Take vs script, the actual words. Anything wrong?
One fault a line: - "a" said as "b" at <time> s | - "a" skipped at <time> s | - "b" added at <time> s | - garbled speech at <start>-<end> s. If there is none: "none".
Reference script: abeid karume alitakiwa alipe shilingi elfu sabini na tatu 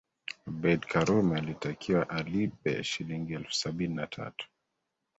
none